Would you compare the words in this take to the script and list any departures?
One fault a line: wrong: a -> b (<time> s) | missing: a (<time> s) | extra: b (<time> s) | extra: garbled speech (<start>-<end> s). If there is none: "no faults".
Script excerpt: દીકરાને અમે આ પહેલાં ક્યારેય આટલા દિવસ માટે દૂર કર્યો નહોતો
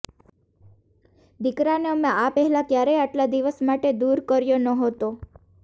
no faults